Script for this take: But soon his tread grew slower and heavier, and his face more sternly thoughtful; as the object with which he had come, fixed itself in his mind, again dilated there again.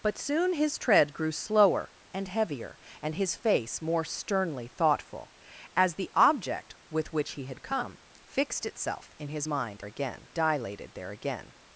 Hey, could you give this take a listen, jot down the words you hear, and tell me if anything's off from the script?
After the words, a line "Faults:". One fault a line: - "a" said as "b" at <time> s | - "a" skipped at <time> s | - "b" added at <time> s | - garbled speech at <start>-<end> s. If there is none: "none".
But soon his tread grew slower and heavier, and his face more sternly thoughtful; as the object with which he had come, fixed itself in his mind, again dilated there again.
Faults:
none